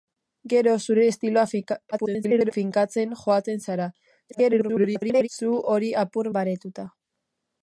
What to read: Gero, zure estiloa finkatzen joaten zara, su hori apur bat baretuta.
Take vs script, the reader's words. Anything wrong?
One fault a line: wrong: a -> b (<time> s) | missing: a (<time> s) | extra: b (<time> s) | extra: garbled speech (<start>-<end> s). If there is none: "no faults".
extra: garbled speech (1.9-2.5 s)
extra: garbled speech (4.3-5.3 s)
missing: bat (6.3 s)